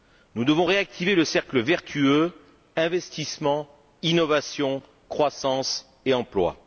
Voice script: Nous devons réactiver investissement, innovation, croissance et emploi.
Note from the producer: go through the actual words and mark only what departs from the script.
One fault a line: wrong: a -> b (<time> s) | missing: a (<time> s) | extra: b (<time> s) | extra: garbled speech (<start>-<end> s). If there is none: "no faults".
extra: le cercle vertueux (1.2 s)